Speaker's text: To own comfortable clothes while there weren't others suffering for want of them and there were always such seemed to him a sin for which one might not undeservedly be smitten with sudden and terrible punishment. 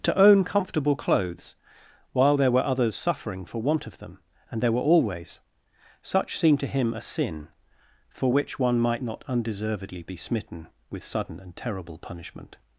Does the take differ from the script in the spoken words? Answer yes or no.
yes